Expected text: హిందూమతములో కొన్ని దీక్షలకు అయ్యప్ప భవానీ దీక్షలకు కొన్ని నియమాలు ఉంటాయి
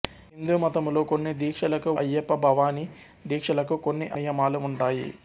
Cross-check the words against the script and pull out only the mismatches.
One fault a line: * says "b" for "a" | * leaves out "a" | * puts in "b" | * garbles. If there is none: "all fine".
all fine